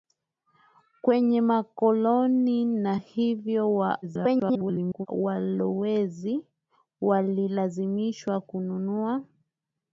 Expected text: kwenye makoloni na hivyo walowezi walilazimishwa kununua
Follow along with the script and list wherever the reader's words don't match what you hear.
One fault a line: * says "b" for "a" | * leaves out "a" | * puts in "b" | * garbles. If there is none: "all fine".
* garbles